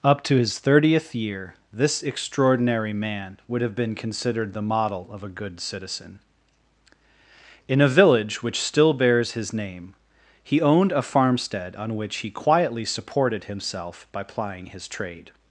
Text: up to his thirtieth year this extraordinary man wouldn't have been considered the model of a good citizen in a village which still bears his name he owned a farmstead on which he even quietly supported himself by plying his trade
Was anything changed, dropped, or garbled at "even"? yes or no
yes